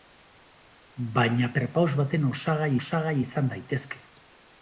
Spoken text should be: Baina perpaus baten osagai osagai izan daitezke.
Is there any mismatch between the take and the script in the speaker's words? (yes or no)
no